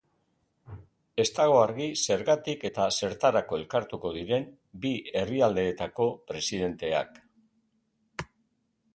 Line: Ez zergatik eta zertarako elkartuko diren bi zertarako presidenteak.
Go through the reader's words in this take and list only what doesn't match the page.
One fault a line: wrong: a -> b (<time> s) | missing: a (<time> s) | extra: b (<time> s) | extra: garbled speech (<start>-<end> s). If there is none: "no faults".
extra: dago argi (1.4 s)
wrong: zertarako -> herrialdeetako (5.2 s)